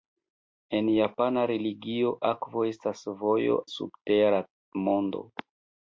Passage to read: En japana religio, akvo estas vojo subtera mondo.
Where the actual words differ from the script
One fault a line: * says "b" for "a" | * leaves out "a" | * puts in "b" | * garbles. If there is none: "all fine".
all fine